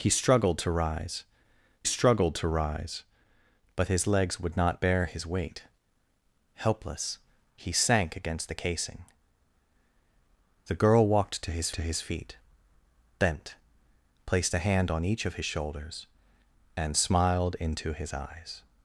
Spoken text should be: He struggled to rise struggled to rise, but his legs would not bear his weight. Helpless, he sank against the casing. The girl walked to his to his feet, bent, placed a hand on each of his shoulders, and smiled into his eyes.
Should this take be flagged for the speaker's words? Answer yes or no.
no